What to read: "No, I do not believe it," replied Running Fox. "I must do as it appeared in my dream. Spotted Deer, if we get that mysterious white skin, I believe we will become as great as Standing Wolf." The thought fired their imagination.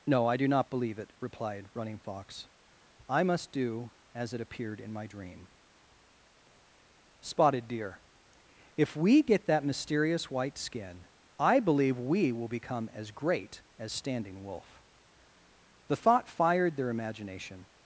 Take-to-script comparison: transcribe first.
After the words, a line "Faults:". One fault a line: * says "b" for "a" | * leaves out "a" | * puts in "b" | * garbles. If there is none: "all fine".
"No, I do not believe it," replied Running Fox. "I must do as it appeared in my dream. Spotted Deer, if we get that mysterious white skin, I believe we will become as great as Standing Wolf." The thought fired their imagination.
Faults:
all fine